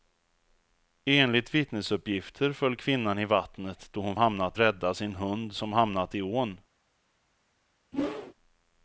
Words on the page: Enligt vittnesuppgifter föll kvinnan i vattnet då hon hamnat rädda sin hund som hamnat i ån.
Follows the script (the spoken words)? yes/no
yes